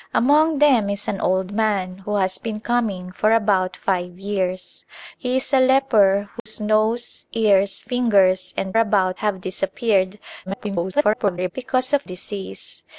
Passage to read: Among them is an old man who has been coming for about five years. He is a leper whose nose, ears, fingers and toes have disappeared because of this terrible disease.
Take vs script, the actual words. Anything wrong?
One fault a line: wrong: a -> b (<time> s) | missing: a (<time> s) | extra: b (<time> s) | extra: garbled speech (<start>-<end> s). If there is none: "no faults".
wrong: toes -> about (8.8 s)
extra: garbled speech (10.5-11.5 s)
missing: this terrible (12.1 s)